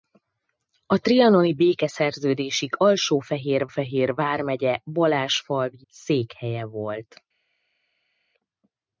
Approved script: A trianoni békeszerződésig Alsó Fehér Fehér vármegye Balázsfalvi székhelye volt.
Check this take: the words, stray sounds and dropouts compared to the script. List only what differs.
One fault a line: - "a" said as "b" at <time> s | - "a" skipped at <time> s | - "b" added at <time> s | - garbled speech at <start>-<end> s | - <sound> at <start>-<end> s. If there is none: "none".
none